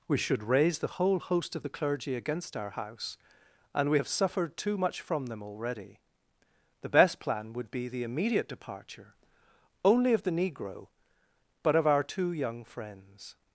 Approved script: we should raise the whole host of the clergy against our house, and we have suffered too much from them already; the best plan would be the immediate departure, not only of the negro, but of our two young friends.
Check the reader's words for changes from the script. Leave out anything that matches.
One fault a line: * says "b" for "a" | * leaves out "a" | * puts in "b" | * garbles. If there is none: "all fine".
* leaves out "not"